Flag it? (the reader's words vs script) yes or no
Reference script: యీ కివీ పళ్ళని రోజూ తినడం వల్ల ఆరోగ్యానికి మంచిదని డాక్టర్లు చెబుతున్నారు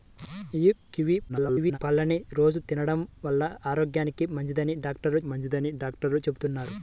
yes